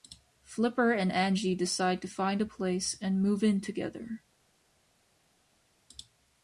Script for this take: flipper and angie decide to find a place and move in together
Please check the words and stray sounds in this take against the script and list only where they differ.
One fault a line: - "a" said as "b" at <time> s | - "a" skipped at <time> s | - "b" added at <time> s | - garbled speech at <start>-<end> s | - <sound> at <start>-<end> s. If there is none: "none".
none